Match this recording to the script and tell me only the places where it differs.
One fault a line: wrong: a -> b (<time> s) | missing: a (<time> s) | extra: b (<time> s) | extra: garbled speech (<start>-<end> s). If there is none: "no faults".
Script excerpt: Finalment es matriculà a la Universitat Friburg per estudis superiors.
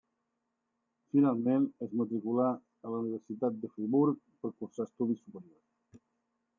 extra: de (3.6 s)
extra: cursar (4.6 s)